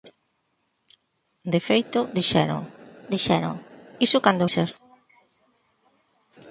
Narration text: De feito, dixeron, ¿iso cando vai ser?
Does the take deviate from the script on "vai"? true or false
true